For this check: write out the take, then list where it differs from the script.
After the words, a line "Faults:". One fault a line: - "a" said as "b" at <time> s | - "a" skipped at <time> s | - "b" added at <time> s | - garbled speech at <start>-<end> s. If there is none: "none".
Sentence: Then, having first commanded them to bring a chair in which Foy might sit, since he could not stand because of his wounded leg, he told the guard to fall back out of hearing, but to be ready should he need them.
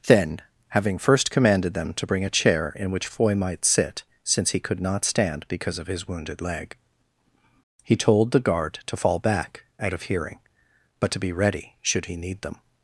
Then, having first commanded them to bring a chair in which Foy might sit, since he could not stand because of his wounded leg, he told the guard to fall back out of hearing, but to be ready should he need them.
Faults:
none